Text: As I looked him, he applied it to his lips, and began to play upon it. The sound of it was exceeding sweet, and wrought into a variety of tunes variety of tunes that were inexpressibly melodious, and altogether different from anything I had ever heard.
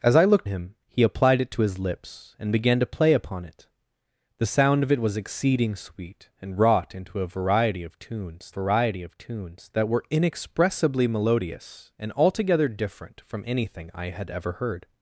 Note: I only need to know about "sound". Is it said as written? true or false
true